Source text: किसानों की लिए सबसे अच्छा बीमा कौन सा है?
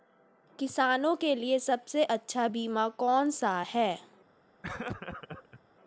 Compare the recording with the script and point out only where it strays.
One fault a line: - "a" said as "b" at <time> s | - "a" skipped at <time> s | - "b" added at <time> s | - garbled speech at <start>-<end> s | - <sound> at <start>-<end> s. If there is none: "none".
- "की" said as "के" at 1.1 s
- laugh at 4.6-5.6 s